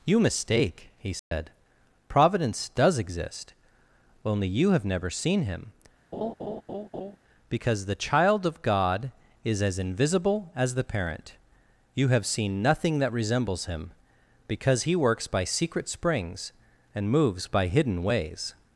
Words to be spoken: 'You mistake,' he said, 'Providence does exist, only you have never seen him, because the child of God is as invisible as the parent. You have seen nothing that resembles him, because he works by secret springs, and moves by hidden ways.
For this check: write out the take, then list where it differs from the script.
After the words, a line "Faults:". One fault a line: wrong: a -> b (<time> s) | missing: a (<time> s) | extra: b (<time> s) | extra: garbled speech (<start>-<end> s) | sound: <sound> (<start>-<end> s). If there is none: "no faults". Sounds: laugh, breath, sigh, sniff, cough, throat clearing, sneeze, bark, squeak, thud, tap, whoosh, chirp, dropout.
'You mistake,' he said, 'Providence does exist, only you have never seen him, because the child of God is as invisible as the parent. You have seen nothing that resembles him, because he works by secret springs, and moves by hidden ways.
Faults:
sound: dropout (1.2-1.3 s)
sound: laugh (6.1-7.2 s)